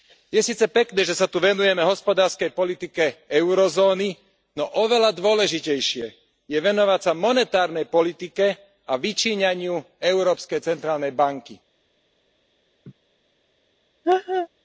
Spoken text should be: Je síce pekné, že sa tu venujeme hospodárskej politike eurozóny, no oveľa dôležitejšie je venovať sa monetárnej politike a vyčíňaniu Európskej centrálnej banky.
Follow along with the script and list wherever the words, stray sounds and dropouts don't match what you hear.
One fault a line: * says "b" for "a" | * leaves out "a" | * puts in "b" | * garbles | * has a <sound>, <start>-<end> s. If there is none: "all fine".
* has a laugh, 12.8-12.9 s
* has a laugh, 14.0-14.5 s